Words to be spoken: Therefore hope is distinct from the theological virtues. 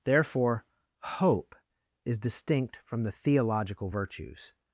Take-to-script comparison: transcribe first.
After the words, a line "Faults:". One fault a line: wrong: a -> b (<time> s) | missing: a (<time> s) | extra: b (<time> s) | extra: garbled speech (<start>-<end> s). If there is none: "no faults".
Therefore hope is distinct from the theological virtues.
Faults:
no faults